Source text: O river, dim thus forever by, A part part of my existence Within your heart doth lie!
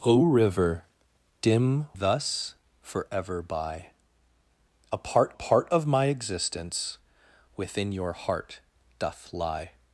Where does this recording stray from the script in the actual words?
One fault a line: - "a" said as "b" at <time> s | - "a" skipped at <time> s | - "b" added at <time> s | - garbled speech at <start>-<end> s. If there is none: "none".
none